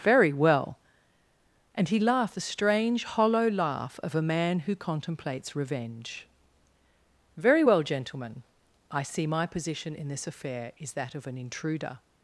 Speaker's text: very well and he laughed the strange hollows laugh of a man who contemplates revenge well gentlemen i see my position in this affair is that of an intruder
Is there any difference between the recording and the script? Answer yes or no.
yes